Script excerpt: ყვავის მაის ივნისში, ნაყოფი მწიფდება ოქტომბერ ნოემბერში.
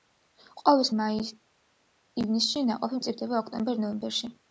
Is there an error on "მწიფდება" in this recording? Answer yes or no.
no